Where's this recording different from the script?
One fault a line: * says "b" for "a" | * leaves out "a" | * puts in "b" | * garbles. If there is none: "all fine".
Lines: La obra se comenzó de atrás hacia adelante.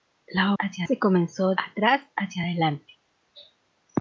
* says "hacia" for "obra"
* leaves out "de"